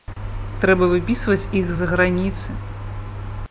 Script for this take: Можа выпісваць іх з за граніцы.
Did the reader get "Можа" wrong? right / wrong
wrong